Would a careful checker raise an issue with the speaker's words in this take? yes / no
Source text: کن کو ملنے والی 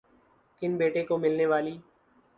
yes